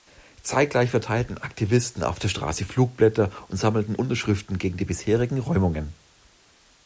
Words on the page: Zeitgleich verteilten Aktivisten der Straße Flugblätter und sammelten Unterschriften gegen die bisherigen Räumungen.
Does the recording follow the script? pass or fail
fail